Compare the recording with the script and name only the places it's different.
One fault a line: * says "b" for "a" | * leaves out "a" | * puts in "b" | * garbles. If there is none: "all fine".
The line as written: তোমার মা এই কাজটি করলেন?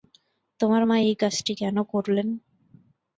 * puts in "কেন"